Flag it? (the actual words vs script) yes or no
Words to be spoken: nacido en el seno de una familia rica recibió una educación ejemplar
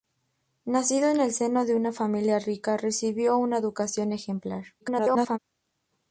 yes